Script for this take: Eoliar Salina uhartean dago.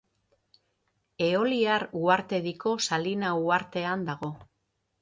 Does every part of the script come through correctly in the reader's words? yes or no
no